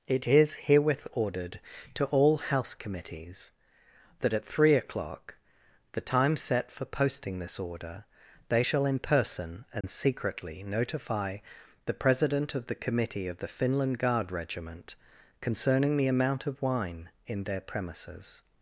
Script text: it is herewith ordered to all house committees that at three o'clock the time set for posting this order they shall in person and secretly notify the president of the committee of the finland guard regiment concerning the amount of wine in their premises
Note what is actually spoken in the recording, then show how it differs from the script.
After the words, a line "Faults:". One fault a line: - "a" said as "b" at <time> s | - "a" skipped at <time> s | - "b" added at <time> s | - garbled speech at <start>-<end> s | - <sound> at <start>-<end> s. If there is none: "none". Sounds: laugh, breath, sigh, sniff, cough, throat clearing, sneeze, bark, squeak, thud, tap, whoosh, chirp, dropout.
it is herewith ordered to all house committees that at three o'clock the time set for posting this order they shall in person and secretly notify the president of the committee of the finland guard regiment concerning the amount of wine in their premises
Faults:
- dropout at 9.8-9.8 s